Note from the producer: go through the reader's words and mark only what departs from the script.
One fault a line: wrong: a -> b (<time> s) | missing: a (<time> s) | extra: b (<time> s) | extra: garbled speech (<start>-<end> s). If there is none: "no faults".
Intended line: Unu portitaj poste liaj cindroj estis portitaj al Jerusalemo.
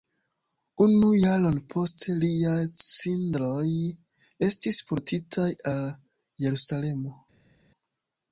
wrong: portitaj -> jaron (1.2 s)